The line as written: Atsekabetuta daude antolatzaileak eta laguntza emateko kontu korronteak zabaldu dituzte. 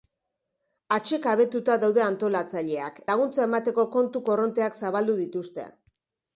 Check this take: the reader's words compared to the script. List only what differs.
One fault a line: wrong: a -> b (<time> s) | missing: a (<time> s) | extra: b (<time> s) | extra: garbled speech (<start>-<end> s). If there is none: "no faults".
missing: eta (3.0 s)